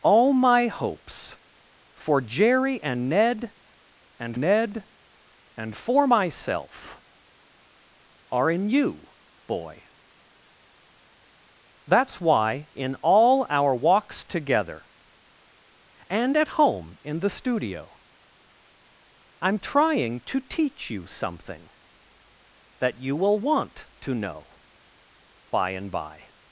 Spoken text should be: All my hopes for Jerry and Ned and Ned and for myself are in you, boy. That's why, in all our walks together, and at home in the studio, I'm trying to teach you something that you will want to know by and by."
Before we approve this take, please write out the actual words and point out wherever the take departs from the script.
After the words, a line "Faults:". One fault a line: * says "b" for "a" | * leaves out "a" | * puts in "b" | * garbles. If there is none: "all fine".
All my hopes for Jerry and Ned and Ned and for myself are in you, boy. That's why, in all our walks together, and at home in the studio, I'm trying to teach you something that you will want to know by and by."
Faults:
all fine